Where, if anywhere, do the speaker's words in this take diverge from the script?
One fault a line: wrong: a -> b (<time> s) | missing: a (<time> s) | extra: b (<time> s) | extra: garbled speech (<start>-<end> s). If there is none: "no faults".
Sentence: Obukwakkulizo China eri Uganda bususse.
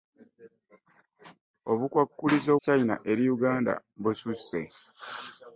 no faults